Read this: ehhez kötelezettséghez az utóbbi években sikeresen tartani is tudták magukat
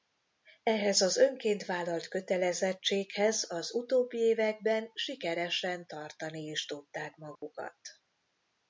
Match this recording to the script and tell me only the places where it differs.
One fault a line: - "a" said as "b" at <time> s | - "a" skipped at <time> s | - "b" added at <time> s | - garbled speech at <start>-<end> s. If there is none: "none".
- "az önként vállalt" added at 1.0 s